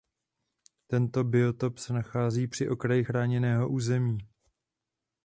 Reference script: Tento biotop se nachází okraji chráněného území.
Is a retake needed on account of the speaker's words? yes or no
yes